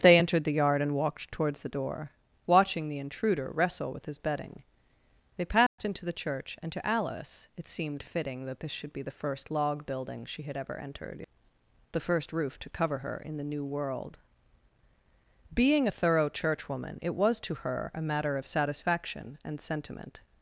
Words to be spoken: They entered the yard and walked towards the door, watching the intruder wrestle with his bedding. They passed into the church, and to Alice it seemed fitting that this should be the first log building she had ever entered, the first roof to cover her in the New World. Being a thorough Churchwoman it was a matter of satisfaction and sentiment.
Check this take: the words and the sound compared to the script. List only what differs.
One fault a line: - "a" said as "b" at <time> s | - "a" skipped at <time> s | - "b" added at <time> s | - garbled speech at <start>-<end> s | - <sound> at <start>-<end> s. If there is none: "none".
- dropout at 5.7-5.8 s
- "to her" added at 17.4 s